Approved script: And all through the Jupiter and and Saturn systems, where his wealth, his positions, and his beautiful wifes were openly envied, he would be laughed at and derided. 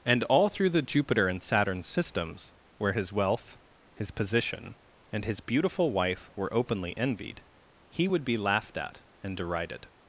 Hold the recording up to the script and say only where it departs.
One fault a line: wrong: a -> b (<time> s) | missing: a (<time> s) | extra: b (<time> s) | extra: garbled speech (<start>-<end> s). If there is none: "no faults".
missing: and (1.4 s)
wrong: positions -> position (4.1 s)
wrong: wifes -> wife (5.9 s)